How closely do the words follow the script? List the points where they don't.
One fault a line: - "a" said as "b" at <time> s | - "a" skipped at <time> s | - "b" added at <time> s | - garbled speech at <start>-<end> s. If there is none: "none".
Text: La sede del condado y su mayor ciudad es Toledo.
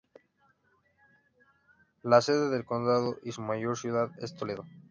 none